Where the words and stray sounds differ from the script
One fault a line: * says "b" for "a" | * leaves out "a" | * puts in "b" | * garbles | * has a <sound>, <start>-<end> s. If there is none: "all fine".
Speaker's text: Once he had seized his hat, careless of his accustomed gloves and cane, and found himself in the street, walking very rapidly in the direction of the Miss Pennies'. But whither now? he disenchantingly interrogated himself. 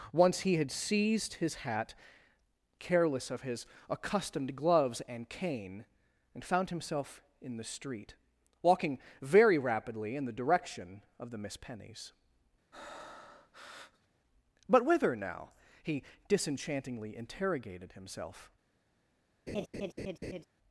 * has a breath, 12.7-14.1 s
* has a laugh, 19.5-20.4 s